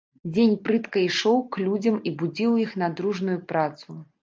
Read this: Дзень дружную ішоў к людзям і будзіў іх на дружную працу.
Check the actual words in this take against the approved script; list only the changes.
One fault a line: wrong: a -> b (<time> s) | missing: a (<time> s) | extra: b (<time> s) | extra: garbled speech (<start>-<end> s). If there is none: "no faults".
wrong: дружную -> прытка (0.7 s)